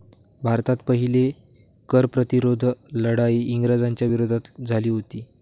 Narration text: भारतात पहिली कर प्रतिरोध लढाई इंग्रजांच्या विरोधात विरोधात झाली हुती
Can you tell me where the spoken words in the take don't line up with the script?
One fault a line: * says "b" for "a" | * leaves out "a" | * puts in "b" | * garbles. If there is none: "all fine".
* leaves out "विरोधात"